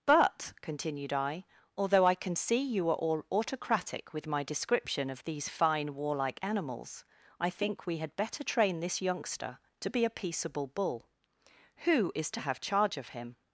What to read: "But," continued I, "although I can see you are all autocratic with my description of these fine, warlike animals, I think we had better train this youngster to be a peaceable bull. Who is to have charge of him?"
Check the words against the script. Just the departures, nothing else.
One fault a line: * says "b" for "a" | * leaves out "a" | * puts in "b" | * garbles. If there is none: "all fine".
all fine